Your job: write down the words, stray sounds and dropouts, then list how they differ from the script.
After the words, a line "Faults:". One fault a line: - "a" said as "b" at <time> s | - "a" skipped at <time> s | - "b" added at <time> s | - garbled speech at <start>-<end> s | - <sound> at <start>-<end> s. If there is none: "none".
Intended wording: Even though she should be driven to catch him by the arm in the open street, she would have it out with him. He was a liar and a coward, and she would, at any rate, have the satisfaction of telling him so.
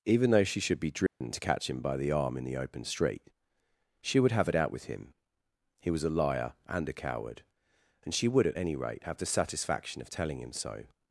Even though she should be driven to catch him by the arm in the open street, she would have it out with him. He was a liar and a coward, and she would, at any rate, have the satisfaction of telling him so.
Faults:
- dropout at 1.1-1.2 s